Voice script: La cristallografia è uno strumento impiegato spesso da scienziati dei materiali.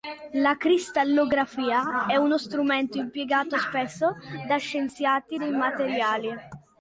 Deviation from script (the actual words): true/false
false